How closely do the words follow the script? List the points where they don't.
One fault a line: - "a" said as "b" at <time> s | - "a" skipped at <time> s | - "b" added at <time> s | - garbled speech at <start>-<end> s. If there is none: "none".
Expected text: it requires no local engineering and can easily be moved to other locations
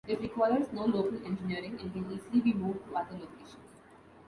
none